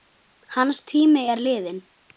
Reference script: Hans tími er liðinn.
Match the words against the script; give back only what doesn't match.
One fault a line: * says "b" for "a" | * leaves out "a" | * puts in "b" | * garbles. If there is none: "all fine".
all fine